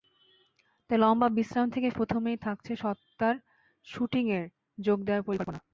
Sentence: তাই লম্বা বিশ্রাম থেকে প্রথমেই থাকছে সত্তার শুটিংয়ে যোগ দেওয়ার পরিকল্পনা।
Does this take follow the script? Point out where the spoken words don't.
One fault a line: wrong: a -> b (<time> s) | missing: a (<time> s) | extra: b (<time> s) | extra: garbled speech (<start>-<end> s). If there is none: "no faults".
no faults